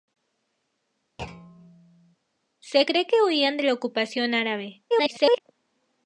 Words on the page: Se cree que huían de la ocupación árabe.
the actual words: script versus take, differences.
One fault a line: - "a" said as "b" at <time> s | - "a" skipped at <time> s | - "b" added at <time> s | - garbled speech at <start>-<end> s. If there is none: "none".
- garbled speech at 4.9-5.4 s